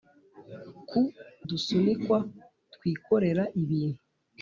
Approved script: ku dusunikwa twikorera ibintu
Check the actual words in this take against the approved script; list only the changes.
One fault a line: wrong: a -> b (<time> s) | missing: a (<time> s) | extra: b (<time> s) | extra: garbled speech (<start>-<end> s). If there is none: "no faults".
no faults